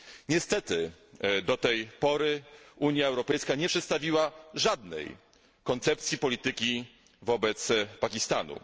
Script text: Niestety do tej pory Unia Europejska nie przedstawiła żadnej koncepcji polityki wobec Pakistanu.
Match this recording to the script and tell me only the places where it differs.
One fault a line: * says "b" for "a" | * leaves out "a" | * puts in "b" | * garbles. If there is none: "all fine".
all fine